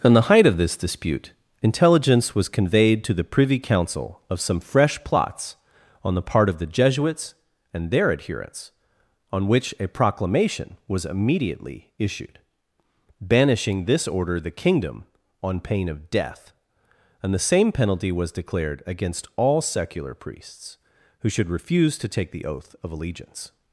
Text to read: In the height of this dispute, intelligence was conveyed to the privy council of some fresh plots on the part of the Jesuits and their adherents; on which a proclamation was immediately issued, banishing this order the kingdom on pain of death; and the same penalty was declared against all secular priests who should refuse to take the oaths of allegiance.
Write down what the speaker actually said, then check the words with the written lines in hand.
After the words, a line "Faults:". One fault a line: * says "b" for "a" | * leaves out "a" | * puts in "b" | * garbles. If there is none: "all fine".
In the height of this dispute, intelligence was conveyed to the privy council of some fresh plots on the part of the Jesuits and their adherents; on which a proclamation was immediately issued, banishing this order the kingdom on pain of death; and the same penalty was declared against all secular priests who should refuse to take the oath of allegiance.
Faults:
* says "oath" for "oaths"